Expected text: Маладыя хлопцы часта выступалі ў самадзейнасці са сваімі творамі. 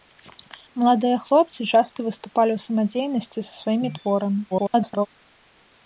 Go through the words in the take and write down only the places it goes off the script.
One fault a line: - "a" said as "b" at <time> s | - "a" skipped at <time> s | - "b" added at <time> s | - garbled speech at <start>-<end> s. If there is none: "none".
- garbled speech at 4.5-5.1 s